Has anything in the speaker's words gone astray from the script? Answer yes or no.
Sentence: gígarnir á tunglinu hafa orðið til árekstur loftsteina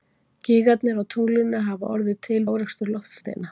no